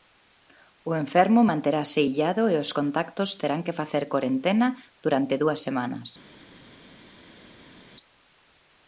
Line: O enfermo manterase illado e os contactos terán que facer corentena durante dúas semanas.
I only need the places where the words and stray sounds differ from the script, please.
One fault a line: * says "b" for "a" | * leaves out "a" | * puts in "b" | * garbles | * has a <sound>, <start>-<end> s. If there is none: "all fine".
all fine